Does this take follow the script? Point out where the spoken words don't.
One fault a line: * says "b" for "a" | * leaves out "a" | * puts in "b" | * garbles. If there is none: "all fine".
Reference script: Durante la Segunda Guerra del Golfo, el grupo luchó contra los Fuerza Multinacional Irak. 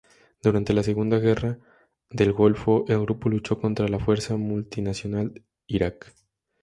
* says "la" for "los"